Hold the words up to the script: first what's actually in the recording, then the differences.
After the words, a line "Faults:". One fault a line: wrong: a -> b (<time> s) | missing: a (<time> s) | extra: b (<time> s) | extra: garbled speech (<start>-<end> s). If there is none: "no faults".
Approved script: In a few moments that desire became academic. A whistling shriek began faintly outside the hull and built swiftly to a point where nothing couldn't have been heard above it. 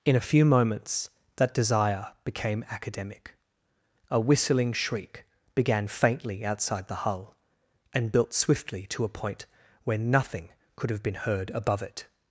In a few moments that desire became academic. A whistling shriek began faintly outside the hull and built swiftly to a point where nothing could have been heard above it.
Faults:
wrong: couldn't -> could (10.8 s)